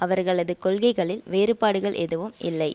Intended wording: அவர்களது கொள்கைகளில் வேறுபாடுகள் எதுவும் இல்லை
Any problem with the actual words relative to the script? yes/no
no